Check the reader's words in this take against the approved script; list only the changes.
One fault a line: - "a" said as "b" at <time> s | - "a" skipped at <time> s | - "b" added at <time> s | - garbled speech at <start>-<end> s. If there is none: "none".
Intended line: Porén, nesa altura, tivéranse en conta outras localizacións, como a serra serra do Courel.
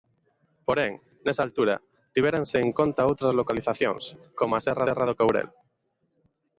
none